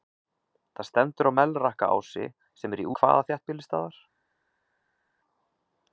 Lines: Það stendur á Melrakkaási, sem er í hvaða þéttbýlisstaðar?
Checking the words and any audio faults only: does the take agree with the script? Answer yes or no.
yes